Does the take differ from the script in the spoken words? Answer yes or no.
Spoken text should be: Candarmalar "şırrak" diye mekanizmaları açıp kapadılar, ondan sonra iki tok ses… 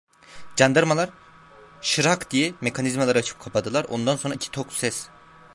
no